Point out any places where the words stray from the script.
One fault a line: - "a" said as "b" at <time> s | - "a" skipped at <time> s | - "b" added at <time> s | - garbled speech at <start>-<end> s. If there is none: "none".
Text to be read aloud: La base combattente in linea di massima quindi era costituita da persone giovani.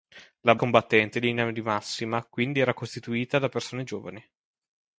- "base" skipped at 0.6 s